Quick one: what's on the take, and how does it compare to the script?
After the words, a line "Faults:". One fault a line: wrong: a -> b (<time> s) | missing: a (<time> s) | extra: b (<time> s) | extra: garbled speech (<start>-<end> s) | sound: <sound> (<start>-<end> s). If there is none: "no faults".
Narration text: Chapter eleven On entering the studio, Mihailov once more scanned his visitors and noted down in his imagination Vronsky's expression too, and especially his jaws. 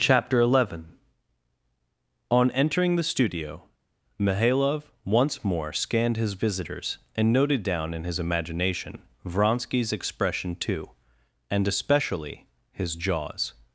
Chapter eleven On entering the studio, Mihailov once more scanned his visitors and noted down in his imagination Vronsky's expression too, and especially his jaws.
Faults:
no faults